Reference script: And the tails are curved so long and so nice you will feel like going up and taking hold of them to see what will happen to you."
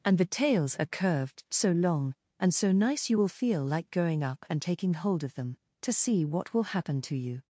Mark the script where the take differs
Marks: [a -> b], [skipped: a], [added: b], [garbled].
And the tails are curved so long and so nice you will feel like going up and taking hold of them to see what will happen to you."